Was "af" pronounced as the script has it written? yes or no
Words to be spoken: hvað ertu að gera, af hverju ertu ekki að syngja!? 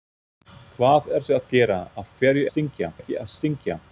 yes